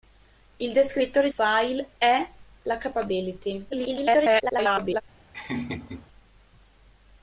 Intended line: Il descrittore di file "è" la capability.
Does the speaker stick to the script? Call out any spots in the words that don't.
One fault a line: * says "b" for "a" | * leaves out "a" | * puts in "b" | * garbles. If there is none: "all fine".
* leaves out "di"
* garbles